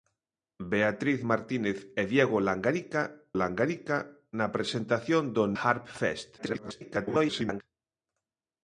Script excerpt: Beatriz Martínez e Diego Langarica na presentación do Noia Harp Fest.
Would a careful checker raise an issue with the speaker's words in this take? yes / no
yes